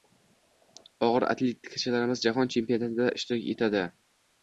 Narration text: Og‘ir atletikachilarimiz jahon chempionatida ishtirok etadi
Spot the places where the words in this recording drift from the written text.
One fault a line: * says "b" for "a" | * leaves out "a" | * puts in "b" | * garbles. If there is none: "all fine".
all fine